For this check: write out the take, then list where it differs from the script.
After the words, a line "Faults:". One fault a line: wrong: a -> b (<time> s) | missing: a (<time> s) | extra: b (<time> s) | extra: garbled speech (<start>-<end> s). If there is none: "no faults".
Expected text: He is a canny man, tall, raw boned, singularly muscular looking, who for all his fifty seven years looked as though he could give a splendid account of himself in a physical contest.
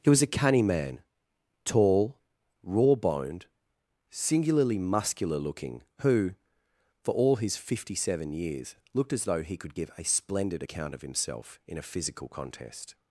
He was a canny man, tall, raw boned, singularly muscular looking, who for all his fifty seven years looked as though he could give a splendid account of himself in a physical contest.
Faults:
wrong: is -> was (0.1 s)